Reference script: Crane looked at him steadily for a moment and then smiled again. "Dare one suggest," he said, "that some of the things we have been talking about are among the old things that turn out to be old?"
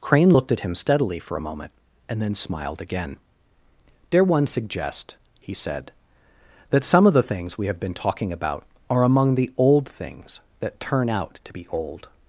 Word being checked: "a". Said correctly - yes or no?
yes